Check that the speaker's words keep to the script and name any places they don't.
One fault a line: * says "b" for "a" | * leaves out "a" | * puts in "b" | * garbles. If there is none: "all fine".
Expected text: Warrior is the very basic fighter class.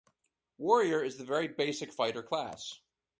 all fine